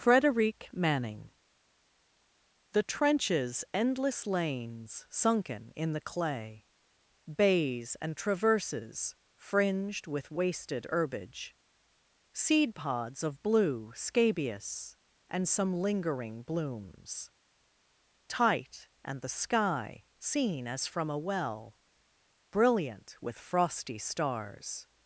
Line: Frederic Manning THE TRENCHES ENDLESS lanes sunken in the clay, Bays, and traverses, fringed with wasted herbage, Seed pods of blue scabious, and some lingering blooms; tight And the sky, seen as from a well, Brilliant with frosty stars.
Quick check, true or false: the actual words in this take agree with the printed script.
true